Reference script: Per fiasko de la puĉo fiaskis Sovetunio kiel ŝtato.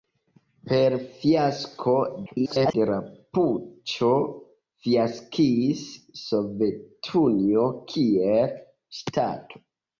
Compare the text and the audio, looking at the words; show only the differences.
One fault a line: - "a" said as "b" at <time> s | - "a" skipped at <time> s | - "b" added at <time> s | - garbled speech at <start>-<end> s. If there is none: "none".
- garbled speech at 2.3-2.7 s